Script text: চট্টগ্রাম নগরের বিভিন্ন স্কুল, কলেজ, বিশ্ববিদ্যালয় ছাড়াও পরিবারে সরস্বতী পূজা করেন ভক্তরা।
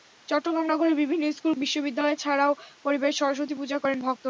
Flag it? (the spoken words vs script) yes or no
yes